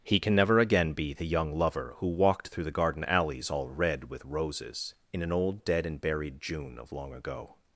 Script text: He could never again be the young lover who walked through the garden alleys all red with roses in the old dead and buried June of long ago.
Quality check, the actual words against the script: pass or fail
fail